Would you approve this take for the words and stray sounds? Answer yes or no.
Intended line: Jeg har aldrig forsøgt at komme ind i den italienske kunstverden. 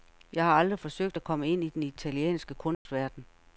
no